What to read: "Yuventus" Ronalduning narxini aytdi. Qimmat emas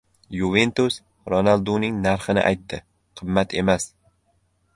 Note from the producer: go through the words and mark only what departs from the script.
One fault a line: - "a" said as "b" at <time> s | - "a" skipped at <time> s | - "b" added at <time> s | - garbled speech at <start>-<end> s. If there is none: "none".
none